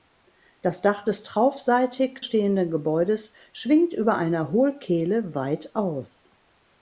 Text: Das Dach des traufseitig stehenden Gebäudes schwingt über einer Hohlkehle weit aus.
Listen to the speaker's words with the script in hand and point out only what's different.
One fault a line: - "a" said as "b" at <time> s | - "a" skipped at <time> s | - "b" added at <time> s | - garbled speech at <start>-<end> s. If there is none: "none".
none